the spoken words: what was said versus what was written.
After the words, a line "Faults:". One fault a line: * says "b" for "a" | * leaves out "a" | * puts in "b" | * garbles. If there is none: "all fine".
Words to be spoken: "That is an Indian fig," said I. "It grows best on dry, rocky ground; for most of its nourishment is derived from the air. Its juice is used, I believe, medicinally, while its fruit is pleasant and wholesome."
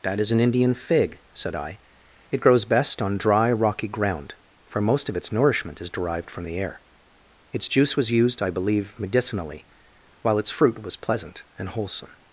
"That is an Indian fig," said I. "It grows best on dry, rocky ground; for most of its nourishment is derived from the air. Its juice was used, I believe, medicinally, while its fruit was pleasant and wholesome."
Faults:
* says "was" for "is"
* says "was" for "is"